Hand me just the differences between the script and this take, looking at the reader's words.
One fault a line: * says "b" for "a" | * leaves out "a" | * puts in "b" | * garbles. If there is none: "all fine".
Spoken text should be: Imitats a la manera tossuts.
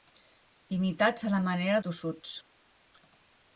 all fine